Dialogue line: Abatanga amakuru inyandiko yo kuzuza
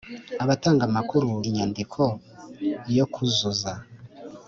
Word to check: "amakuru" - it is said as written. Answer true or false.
true